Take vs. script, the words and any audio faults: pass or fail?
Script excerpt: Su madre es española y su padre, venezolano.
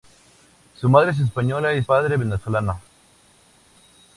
fail